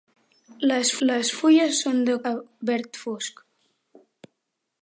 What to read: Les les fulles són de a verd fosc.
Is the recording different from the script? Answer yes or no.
no